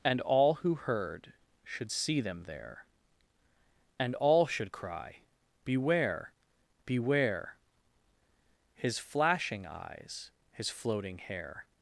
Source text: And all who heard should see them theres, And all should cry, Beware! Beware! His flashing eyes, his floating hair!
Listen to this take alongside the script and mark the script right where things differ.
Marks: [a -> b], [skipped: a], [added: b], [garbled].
And all who heard should see them [theres, -> there] And all should cry, Beware! Beware! His flashing eyes, his floating hair!